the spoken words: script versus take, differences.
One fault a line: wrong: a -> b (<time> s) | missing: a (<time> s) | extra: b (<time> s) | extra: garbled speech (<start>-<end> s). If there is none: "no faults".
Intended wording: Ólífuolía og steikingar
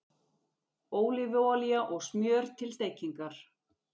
extra: smjör til (2.1 s)